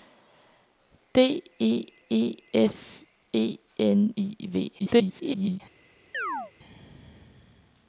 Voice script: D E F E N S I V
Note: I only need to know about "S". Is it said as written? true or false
false